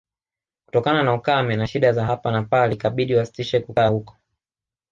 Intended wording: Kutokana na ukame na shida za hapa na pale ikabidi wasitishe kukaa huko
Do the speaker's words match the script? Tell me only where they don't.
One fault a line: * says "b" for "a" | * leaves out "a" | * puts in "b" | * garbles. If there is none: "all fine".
all fine